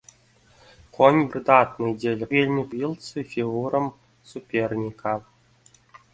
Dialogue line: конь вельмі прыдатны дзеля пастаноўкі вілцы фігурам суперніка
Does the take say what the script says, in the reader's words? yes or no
no